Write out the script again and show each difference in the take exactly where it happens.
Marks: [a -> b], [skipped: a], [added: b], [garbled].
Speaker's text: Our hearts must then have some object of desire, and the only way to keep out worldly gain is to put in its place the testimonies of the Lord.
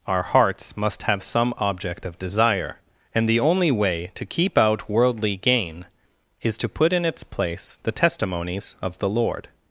Our hearts must [skipped: then] have some object of desire, and the only way to keep out worldly gain is to put in its place the testimonies of the Lord.